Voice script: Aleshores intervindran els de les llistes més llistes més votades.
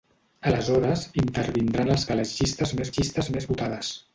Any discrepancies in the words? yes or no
no